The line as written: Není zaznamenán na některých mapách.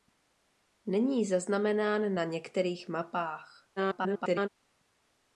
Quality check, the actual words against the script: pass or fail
fail